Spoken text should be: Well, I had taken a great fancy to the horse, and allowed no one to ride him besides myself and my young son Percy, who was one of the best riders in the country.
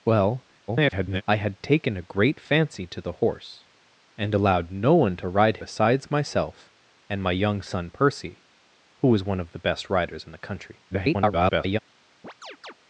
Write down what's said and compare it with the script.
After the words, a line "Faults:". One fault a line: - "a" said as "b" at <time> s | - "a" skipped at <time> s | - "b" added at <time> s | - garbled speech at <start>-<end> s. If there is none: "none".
Well, [garbled] I had taken a great fancy to the horse, and allowed no one to ride besides myself and my young son Percy, who was one of the best riders in the country. [garbled]
Faults:
- garbled speech at 0.7-1.2 s
- "him" skipped at 5.6 s
- garbled speech at 10.9-11.8 s